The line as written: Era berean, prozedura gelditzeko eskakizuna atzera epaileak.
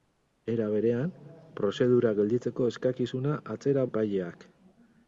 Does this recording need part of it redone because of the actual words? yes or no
no